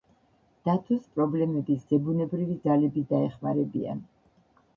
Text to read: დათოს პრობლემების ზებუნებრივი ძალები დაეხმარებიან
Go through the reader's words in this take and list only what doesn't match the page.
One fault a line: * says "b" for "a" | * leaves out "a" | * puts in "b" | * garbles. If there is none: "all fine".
all fine